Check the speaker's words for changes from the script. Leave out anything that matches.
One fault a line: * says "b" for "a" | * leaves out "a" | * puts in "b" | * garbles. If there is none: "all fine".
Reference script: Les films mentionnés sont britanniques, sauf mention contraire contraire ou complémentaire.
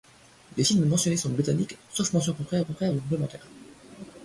all fine